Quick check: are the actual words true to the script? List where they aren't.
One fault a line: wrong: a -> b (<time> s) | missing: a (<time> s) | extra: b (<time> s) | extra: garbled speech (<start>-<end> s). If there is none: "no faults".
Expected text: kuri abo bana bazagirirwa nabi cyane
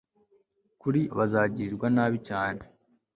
missing: abo bana (1.0 s)